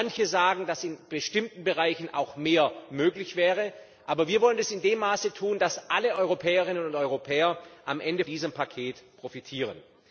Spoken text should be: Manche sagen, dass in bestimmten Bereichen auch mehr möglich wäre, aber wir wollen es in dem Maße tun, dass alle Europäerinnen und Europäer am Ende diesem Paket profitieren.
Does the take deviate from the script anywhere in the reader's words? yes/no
no